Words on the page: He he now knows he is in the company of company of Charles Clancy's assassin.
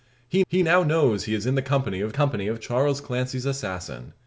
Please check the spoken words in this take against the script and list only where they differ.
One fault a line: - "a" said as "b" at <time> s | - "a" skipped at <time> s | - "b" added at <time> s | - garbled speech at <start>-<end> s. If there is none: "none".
none